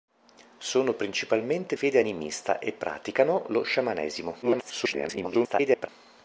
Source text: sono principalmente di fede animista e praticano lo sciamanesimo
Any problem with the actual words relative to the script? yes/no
yes